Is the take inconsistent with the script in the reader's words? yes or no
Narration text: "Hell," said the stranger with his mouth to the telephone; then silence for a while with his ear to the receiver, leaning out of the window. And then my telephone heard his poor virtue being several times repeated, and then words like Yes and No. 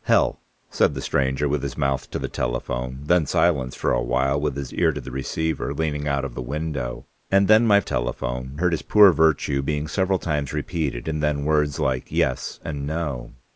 no